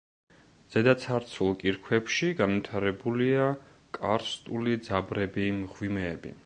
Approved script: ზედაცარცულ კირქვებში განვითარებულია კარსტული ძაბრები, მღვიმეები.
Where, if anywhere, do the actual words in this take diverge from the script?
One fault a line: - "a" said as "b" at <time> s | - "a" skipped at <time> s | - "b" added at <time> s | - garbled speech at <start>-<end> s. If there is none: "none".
none